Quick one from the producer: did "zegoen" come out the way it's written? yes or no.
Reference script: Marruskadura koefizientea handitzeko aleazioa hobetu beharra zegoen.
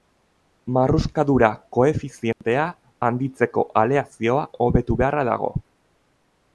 no